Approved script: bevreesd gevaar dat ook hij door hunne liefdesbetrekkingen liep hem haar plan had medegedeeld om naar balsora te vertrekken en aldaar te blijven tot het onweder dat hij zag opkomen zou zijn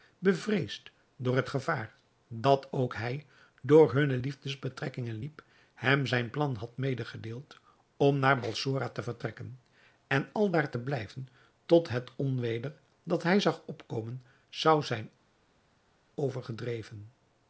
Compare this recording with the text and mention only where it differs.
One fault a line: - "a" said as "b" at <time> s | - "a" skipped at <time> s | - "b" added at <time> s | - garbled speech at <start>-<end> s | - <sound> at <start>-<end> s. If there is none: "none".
- "door het" added at 1.1 s
- "haar" said as "zijn" at 6.1 s